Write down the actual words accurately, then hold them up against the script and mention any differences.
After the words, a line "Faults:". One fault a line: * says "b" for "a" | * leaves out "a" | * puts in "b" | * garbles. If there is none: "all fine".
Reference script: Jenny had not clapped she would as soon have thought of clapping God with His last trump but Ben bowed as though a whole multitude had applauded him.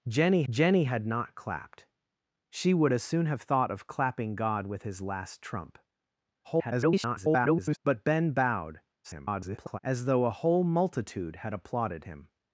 Jenny jenny had not clapped she would as soon have thought of clapping God with His last trump [garbled] but Ben bowed [garbled] as though a whole multitude had applauded him.
Faults:
* puts in "jenny"
* garbles
* garbles